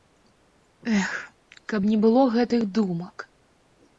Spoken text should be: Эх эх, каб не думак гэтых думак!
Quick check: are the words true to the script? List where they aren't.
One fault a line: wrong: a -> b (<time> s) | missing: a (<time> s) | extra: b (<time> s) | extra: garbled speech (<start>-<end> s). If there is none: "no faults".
missing: эх (1.1 s)
wrong: думак -> было (2.0 s)